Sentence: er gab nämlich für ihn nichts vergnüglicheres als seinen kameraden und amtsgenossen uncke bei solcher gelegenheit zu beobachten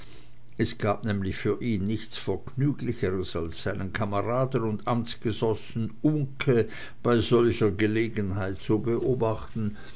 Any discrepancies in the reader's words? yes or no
yes